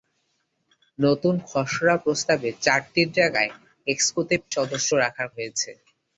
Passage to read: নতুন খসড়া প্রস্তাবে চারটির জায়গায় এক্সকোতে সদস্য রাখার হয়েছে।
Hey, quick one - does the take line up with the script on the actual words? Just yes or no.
yes